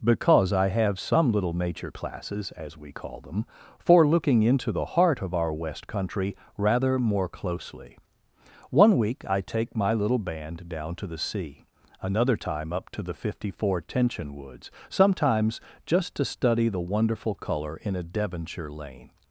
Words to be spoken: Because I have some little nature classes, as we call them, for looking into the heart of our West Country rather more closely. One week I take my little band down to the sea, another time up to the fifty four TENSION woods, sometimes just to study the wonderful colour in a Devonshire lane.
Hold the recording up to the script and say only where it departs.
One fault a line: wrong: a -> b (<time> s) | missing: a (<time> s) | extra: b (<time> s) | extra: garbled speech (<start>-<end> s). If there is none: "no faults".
no faults